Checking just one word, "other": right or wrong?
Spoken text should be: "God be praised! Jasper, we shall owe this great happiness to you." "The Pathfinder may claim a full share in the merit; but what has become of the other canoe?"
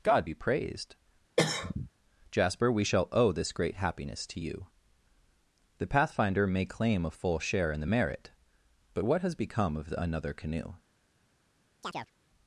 wrong